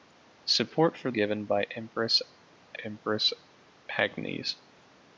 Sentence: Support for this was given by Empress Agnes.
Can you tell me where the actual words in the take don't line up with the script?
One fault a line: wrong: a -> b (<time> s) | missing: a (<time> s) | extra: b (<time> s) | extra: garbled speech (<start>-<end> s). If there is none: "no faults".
missing: this was (1.1 s)
extra: Empress (2.8 s)